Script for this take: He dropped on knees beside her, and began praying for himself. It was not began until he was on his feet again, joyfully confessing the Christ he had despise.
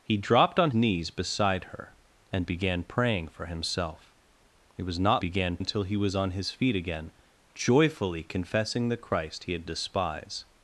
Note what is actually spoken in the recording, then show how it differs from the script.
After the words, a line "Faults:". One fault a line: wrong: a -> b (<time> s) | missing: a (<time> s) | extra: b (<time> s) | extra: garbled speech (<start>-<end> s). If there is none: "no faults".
He dropped on knees beside her, and began praying for himself. It was not began until he was on his feet again, joyfully confessing the Christ he had despise.
Faults:
no faults